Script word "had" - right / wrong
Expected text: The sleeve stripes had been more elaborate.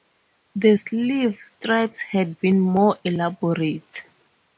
right